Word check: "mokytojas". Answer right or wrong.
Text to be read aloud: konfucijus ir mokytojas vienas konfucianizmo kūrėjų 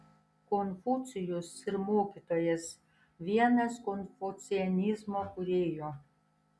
right